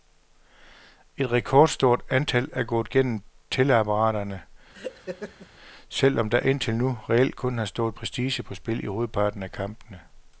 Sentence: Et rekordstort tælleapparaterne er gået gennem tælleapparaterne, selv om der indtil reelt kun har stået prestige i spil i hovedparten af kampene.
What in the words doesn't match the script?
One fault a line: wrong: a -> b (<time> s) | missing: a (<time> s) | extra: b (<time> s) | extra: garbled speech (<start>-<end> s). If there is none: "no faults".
wrong: tælleapparaterne -> antal (2.1 s)
extra: nu (6.8 s)
wrong: i -> på (8.4 s)